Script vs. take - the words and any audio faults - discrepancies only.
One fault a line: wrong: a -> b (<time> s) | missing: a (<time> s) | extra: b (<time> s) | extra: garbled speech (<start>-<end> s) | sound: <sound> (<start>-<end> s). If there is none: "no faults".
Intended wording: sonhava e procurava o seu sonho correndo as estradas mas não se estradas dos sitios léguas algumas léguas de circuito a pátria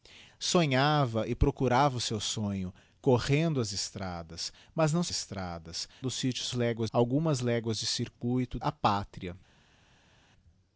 no faults